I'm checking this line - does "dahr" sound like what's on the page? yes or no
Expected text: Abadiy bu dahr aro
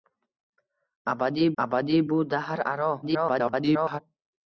yes